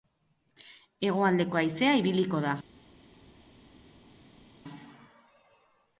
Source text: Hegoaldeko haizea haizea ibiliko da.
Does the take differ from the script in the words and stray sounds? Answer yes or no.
yes